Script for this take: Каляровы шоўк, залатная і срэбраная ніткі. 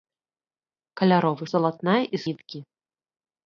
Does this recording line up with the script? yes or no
no